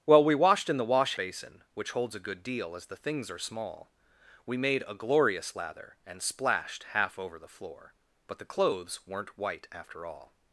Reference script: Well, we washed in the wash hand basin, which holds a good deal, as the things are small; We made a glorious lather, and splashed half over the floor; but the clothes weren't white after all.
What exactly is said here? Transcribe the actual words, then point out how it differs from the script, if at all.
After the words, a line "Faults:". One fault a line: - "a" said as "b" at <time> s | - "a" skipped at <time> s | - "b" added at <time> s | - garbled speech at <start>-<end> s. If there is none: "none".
Well, we washed in the wash basin, which holds a good deal, as the things are small; We made a glorious lather, and splashed half over the floor; but the clothes weren't white after all.
Faults:
- "hand" skipped at 1.1 s